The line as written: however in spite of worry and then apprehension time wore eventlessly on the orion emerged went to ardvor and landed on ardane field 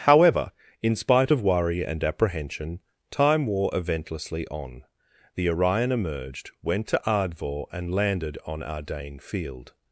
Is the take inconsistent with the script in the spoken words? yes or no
yes